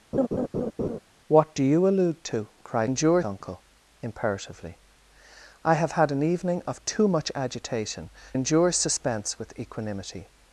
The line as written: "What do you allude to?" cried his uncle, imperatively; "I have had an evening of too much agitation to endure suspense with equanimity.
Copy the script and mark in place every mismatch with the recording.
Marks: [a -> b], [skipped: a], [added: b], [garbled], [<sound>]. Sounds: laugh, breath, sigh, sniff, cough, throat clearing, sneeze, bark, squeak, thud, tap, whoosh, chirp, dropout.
[laugh] "What do you allude to?" cried [his -> endure] uncle, imperatively; "I have had an evening of too much agitation [skipped: to] endure suspense with equanimity.